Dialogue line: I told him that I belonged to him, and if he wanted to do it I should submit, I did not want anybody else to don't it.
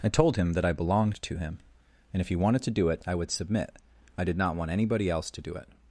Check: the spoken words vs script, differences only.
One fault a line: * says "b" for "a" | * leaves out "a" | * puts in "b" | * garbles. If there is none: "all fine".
* says "would" for "should"
* says "do" for "don't"